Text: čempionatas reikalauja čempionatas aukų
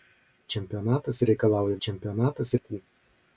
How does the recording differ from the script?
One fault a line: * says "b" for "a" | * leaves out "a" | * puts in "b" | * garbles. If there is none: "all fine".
all fine